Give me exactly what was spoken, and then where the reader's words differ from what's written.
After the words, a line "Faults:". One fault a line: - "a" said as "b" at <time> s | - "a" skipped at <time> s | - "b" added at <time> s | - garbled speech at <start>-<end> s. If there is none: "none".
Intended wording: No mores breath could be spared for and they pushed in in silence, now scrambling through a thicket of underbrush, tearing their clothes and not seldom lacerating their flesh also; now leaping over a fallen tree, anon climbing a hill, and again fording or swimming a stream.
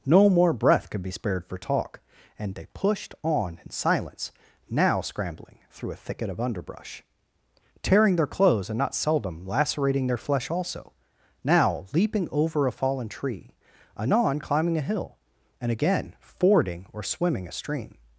No more breath could be spared for talk, and they pushed on in silence, now scrambling through a thicket of underbrush, tearing their clothes and not seldom lacerating their flesh also; now leaping over a fallen tree, anon climbing a hill, and again fording or swimming a stream.
Faults:
- "mores" said as "more" at 0.3 s
- "talk" added at 1.6 s
- "in" said as "on" at 3.2 s